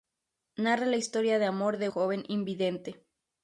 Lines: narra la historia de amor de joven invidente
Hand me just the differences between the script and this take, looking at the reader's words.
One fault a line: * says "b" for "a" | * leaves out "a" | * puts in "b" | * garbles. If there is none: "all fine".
all fine